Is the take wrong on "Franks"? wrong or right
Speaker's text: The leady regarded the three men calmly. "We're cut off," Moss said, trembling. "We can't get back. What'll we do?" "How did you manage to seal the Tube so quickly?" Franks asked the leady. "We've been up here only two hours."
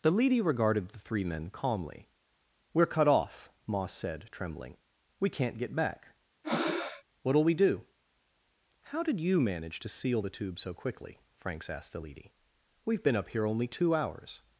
right